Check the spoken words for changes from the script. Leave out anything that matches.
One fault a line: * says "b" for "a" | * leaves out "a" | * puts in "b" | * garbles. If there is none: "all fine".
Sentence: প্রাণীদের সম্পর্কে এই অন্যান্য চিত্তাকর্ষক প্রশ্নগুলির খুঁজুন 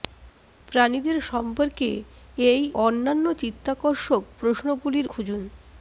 all fine